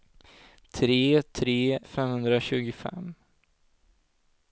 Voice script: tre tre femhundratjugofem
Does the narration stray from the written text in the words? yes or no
no